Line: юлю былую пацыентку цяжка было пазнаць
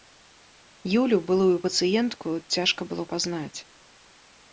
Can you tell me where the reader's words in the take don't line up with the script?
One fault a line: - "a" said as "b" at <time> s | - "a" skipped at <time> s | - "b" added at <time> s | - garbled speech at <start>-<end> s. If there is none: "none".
none